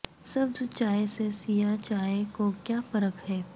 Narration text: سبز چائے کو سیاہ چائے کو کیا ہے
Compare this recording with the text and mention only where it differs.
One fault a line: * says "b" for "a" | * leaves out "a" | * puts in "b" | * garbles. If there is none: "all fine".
* says "سے" for "کو"
* puts in "فرق"